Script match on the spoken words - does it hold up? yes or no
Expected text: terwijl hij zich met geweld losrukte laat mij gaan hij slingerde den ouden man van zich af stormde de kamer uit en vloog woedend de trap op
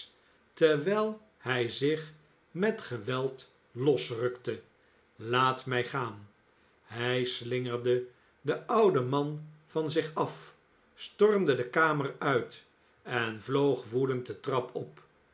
yes